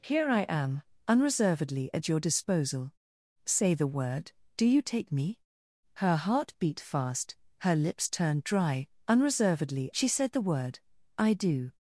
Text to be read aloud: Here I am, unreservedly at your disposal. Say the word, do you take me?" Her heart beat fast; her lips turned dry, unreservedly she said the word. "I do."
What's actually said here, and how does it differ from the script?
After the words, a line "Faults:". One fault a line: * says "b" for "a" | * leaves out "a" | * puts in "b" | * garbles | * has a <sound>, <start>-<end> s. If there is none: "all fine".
Here I am, unreservedly at your disposal. Say the word, do you take me?" Her heart beat fast; her lips turned dry, unreservedly she said the word. "I do."
Faults:
all fine